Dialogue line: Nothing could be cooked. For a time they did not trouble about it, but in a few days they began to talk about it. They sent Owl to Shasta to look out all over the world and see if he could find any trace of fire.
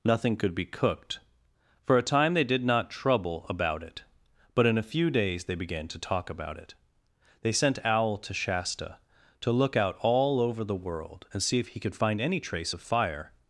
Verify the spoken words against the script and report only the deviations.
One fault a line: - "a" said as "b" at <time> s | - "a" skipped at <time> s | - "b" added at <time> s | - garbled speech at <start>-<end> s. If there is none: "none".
none